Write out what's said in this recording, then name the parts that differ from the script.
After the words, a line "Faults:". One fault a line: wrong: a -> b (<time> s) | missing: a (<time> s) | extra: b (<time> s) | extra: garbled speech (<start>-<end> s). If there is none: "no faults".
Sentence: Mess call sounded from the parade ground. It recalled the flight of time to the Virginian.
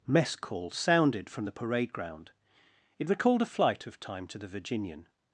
Mess call sounded from the parade ground. It recalled a flight of time to the Virginian.
Faults:
wrong: the -> a (3.4 s)